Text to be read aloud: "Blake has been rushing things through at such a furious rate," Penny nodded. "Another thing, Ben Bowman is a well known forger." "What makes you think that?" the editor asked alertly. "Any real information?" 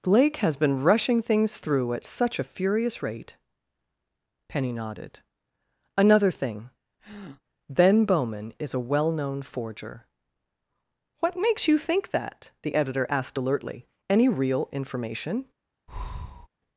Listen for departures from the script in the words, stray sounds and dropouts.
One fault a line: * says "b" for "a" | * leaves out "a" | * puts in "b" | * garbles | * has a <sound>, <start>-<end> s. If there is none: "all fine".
* has a breath, 7.0-7.4 s
* has a breath, 15.9-16.5 s